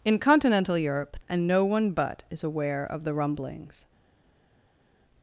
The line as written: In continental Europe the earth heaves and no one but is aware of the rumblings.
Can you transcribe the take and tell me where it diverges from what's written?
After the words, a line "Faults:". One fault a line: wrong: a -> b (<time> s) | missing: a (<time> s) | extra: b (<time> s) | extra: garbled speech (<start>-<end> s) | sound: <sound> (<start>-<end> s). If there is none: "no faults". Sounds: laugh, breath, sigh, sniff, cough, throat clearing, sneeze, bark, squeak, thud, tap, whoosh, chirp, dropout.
In continental Europe and no one but is aware of the rumblings.
Faults:
missing: the earth heaves (1.2 s)